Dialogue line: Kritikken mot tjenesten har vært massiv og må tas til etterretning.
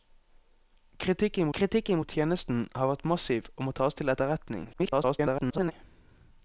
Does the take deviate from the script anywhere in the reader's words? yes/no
yes